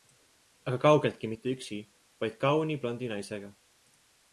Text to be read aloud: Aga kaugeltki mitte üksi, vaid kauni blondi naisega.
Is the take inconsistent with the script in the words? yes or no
no